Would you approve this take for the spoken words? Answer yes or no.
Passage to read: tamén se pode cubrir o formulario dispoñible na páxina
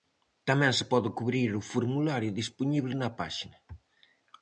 yes